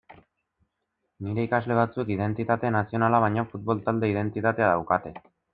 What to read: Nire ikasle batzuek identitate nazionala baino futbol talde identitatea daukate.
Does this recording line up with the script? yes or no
yes